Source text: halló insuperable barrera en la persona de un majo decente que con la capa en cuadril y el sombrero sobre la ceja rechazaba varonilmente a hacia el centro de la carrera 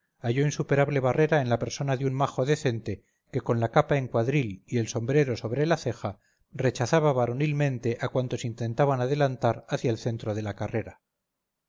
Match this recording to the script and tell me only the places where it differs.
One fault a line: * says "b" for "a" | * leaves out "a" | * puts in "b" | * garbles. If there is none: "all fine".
* puts in "cuantos intentaban adelantar"